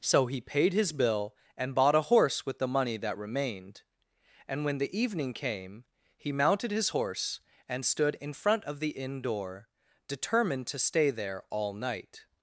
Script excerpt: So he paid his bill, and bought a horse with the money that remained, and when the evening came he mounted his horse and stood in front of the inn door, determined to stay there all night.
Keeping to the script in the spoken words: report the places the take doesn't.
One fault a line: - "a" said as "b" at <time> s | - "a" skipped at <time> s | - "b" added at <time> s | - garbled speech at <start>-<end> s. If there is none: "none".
none